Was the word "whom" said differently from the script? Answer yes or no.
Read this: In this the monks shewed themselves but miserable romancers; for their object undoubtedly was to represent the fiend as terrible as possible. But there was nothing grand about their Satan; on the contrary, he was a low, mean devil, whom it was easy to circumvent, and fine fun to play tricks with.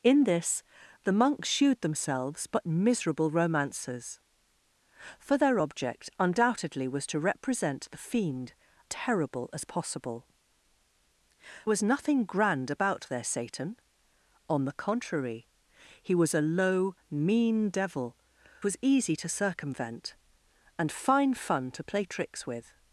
yes